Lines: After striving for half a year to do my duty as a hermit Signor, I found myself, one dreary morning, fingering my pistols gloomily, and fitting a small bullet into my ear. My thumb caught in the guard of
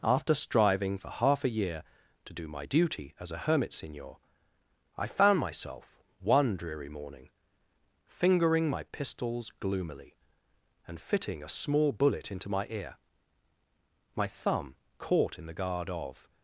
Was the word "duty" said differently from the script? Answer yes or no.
no